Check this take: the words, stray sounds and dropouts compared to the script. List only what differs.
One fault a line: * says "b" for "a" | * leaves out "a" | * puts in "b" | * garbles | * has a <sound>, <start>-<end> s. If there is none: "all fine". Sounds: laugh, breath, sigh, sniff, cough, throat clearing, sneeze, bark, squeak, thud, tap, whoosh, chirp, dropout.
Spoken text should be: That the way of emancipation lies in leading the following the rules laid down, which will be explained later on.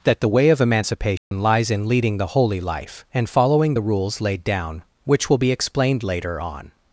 * has a dropout, 1.2-1.3 s
* puts in "holy life and"